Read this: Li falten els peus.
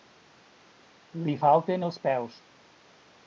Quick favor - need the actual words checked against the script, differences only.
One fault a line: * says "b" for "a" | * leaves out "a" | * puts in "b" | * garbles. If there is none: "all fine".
all fine